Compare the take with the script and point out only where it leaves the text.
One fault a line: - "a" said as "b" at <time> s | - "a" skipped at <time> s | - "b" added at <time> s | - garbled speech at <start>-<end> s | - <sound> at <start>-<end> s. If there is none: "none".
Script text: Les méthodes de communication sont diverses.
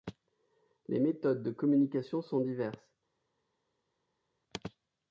none